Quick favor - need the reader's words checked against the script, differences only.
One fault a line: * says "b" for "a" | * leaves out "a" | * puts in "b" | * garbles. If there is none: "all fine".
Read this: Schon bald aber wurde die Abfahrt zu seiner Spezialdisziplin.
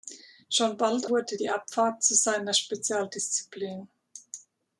* leaves out "aber"